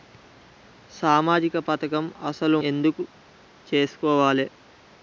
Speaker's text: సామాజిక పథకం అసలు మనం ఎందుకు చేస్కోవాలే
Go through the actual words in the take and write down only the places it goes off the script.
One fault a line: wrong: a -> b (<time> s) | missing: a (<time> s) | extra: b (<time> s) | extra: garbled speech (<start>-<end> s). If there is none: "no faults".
missing: మనం (2.6 s)